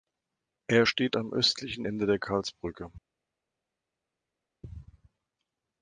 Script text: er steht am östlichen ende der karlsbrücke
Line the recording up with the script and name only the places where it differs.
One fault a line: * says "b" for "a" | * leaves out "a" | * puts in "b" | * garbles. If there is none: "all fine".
all fine